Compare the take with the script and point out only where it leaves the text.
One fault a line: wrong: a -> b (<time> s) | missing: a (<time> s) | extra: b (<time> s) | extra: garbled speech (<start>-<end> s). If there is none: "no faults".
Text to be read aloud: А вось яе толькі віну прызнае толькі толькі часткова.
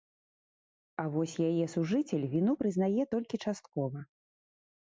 wrong: толькі -> сужыцель (1.7 s)
missing: толькі (3.4 s)